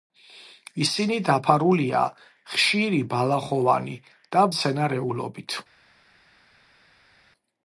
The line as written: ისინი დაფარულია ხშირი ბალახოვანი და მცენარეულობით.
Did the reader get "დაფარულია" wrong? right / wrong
right